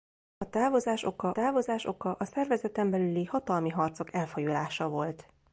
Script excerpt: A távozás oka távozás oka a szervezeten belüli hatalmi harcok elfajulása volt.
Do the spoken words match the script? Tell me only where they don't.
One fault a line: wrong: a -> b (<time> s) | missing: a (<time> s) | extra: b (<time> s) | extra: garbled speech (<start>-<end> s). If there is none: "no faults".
no faults